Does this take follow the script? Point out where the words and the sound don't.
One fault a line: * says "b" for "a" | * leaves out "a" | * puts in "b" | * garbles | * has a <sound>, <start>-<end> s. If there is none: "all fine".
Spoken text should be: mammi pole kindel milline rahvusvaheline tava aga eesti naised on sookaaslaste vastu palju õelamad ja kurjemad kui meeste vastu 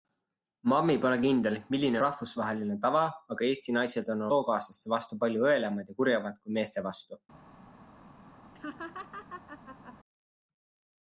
* has a laugh, 8.5-10.0 s